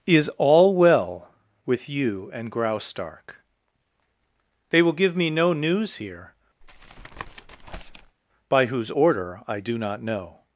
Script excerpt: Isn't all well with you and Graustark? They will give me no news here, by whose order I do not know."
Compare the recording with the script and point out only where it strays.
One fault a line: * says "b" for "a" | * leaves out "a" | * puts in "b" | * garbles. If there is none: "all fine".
* says "Is" for "Isn't"